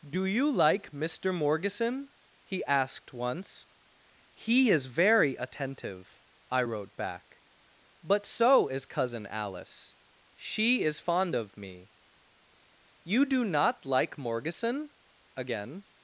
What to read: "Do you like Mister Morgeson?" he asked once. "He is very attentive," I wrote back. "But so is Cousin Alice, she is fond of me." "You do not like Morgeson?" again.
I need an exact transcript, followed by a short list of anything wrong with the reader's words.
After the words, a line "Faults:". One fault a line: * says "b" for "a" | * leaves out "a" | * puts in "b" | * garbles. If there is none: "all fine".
"Do you like Mister Morgeson?" he asked once. "He is very attentive," I wrote back. "But so is Cousin Alice, she is fond of me." "You do not like Morgeson?" again.
Faults:
all fine